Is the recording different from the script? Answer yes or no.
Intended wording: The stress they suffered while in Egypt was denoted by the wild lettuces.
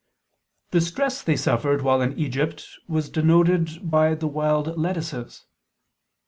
no